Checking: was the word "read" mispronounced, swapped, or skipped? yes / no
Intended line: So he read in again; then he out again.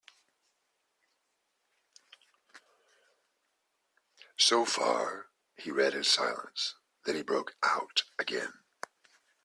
no